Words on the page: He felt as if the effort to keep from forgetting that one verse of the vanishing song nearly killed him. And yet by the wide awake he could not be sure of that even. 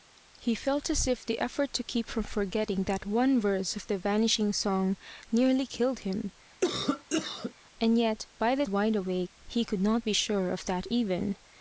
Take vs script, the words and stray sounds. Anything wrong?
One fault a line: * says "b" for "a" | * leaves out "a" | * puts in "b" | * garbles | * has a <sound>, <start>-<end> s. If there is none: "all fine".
* has a cough, 6.6-7.5 s